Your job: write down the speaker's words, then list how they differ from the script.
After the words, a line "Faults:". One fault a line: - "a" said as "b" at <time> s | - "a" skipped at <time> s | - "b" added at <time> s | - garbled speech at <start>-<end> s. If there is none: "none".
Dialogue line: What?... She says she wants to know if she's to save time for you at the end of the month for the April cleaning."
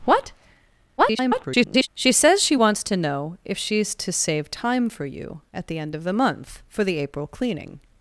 What?... [garbled] She says she wants to know if she's to save time for you at the end of the month for the April cleaning."
Faults:
- garbled speech at 1.0-1.9 s